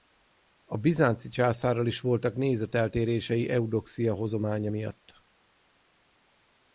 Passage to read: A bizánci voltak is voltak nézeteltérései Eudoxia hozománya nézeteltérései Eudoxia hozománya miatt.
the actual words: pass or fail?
fail